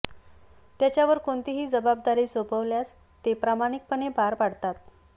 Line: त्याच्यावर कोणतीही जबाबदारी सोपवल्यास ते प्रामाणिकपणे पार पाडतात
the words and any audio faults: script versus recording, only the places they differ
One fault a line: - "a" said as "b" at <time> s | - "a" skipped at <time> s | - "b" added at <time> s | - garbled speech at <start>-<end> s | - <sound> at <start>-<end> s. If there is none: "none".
none